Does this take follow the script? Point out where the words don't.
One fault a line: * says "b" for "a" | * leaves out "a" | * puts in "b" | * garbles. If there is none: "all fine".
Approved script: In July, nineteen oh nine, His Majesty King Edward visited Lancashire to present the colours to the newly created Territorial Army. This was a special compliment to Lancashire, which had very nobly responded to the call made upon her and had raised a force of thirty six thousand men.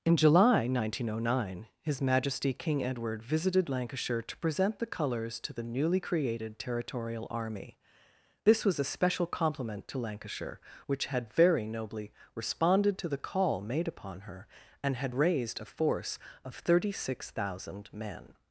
all fine